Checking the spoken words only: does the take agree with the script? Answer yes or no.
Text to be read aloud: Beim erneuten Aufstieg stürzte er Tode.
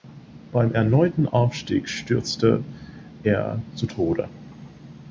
no